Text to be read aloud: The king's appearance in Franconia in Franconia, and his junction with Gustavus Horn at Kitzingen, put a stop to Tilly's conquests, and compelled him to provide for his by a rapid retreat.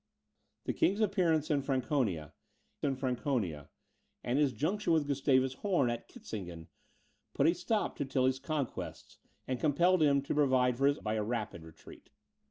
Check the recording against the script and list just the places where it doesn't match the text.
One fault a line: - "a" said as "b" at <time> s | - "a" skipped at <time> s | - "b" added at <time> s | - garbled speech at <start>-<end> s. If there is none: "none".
none